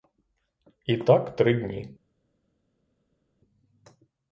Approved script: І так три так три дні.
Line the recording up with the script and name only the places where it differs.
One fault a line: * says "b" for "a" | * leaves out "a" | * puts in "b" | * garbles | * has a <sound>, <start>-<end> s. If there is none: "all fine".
* leaves out "так три"